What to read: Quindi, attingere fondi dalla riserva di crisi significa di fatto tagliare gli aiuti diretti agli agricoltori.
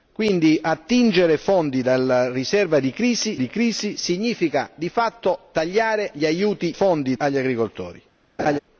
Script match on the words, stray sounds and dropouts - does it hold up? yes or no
no